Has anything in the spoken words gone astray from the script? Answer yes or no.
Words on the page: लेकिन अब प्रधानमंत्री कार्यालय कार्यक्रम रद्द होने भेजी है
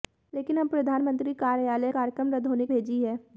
no